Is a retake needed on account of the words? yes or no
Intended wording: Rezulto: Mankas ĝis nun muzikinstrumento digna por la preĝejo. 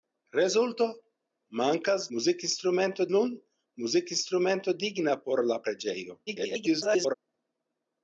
yes